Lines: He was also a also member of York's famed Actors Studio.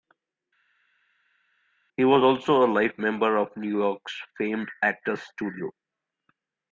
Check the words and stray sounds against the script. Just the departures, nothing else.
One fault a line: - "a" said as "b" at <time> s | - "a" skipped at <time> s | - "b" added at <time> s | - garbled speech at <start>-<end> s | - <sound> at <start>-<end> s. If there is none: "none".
- "also" said as "life" at 2.7 s
- "New" added at 3.6 s